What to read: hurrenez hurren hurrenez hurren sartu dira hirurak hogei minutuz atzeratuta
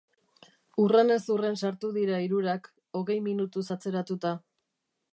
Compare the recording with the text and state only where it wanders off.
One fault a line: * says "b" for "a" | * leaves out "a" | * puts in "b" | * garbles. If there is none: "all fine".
* leaves out "hurrenez hurren"